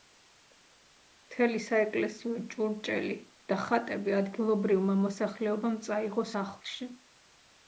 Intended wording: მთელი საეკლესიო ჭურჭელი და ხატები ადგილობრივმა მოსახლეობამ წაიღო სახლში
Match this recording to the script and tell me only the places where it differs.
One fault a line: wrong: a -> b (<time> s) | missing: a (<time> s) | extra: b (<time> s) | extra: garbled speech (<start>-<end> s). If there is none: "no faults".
no faults